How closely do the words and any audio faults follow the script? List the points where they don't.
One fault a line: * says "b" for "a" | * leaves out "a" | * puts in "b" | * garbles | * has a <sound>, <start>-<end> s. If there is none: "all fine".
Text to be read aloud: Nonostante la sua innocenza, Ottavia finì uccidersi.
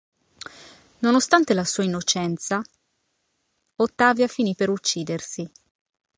* puts in "per"